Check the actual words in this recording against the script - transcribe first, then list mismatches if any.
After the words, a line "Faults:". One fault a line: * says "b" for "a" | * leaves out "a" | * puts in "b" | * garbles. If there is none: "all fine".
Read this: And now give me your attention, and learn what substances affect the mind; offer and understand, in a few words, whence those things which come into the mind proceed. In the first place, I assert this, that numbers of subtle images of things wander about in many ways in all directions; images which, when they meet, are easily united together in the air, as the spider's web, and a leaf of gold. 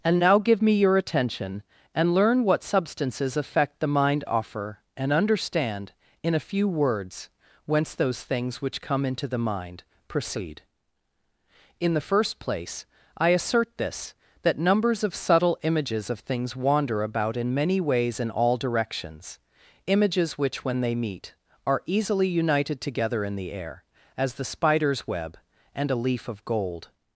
And now give me your attention, and learn what substances affect the mind; offer and understand, in a few words, whence those things which come into the mind proceed. In the first place, I assert this, that numbers of subtle images of things wander about in many ways in all directions; images which, when they meet, are easily united together in the air, as the spider's web, and a leaf of gold.
Faults:
all fine